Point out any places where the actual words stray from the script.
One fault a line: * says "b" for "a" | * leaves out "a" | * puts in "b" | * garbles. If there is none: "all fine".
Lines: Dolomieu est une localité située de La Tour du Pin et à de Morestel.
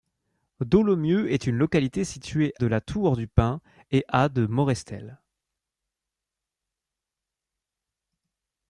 all fine